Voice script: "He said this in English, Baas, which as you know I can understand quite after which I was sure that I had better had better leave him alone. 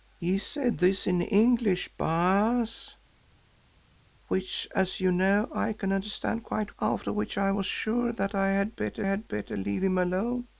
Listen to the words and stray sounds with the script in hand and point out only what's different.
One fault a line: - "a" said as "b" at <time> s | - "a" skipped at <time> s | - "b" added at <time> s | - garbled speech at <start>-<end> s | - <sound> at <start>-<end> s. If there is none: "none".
none